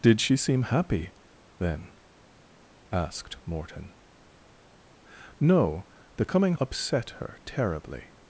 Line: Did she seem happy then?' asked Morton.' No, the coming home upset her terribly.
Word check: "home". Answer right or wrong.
wrong